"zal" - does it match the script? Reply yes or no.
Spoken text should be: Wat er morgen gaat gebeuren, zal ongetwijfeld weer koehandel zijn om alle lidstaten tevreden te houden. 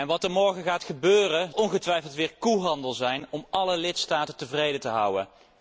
no